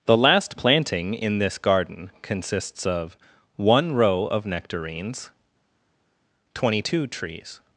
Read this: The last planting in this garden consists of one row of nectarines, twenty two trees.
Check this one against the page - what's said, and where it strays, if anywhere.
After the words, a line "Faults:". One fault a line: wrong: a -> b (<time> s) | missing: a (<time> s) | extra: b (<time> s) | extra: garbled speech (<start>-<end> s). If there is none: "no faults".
The last planting in this garden consists of one row of nectarines, twenty two trees.
Faults:
no faults